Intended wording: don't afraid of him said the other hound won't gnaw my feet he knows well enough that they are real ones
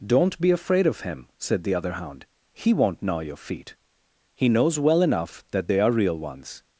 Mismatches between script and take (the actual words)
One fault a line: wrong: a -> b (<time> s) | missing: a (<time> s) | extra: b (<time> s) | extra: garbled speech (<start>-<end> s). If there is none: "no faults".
extra: be (0.4 s)
extra: he (2.5 s)
wrong: my -> your (3.2 s)